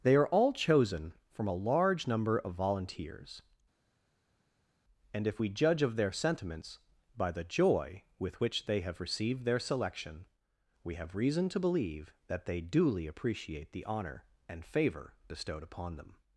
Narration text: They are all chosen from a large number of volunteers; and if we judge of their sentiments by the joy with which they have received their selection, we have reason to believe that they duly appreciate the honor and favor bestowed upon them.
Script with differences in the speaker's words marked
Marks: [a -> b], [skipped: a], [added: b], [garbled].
They are all chosen from a large number of volunteers; and if we judge of their sentiments by the joy with which they have received their selection, we have reason to believe that they duly appreciate the honor and favor bestowed upon them.